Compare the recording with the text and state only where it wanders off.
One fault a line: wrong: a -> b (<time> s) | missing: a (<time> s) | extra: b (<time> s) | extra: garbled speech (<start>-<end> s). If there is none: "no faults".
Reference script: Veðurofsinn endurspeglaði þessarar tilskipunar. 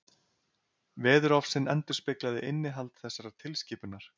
extra: innihald (2.5 s)